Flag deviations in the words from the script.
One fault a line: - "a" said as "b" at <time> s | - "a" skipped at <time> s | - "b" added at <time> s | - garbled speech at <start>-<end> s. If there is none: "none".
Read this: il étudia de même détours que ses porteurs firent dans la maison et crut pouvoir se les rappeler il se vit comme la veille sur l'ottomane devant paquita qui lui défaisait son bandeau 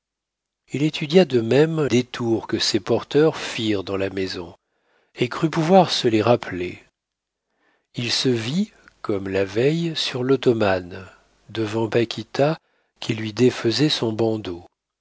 none